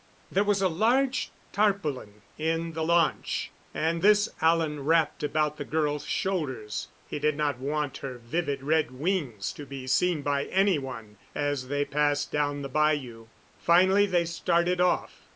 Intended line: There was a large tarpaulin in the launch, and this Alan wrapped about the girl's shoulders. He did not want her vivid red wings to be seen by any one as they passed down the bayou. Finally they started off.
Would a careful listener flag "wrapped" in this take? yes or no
no